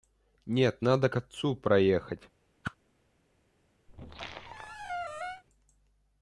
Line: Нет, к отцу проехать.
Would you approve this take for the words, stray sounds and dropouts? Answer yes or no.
no